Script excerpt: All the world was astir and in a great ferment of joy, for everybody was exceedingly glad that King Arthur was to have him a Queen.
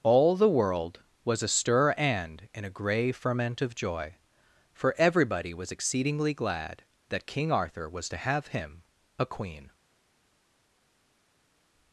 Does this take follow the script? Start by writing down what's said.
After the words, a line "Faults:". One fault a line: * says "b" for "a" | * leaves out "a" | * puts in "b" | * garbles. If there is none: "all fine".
All the world was astir and in a grey ferment of joy, for everybody was exceedingly glad that King Arthur was to have him a Queen.
Faults:
* says "grey" for "great"